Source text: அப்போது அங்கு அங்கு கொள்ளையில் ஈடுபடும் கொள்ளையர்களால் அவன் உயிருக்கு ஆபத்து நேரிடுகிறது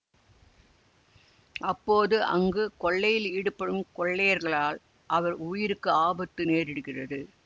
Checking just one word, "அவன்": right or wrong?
wrong